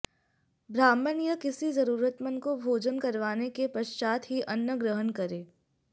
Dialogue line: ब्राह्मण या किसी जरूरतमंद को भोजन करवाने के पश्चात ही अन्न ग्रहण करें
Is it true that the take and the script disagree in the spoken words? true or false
false